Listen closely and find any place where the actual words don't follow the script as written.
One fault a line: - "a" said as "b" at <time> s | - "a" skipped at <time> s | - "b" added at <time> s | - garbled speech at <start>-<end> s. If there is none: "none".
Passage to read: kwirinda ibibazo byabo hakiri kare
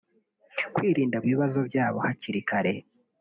none